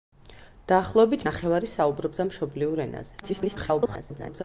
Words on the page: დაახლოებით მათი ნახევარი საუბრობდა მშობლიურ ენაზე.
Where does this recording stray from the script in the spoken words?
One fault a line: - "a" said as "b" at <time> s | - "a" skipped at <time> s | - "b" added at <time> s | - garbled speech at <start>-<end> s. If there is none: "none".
- "მათი" skipped at 1.2 s
- garbled speech at 3.2-4.4 s